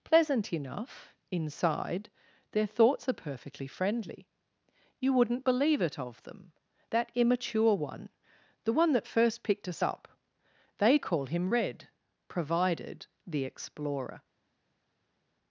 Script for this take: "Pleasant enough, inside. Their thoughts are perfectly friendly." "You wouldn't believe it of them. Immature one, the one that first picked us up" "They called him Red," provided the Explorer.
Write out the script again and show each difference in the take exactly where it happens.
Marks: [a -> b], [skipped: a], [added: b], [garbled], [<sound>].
"Pleasant enough, inside. Their thoughts are perfectly friendly." "You wouldn't believe it of them. [added: That] Immature one, the one that first picked us up" "They [called -> call] him Red," provided the Explorer.